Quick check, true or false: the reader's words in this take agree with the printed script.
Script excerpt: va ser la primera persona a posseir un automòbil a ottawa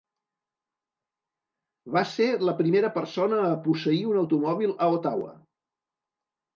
true